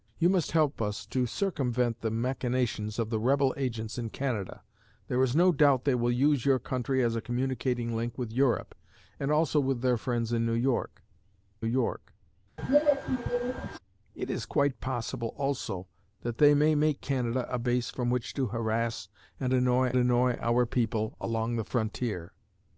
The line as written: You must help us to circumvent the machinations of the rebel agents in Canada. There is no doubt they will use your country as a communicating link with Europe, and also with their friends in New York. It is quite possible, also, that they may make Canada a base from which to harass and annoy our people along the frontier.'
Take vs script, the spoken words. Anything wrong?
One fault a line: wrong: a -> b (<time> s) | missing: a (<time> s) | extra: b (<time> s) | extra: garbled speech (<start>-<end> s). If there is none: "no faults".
extra: York (11.6 s)
extra: annoy (19.9 s)